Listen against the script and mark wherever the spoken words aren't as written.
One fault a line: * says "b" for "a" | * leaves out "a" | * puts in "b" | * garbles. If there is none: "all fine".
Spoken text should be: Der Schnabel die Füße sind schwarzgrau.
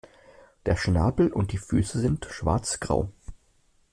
* puts in "und"